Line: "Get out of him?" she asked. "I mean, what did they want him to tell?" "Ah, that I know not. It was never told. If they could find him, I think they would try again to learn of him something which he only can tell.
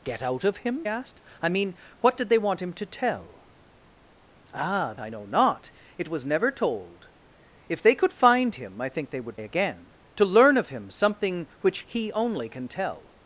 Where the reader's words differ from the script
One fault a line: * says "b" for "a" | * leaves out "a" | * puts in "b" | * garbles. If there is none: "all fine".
* leaves out "she"
* leaves out "that"
* leaves out "try"